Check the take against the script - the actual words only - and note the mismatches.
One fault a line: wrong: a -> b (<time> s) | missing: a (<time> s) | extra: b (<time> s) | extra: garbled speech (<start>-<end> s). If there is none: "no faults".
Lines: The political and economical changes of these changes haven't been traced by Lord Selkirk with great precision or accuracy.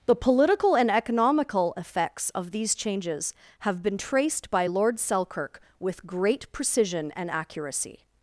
wrong: changes -> effects (1.8 s)
wrong: haven't -> have (3.6 s)
wrong: or -> and (7.2 s)